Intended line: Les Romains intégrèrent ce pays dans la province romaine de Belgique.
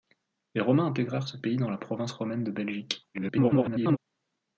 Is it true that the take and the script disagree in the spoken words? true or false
true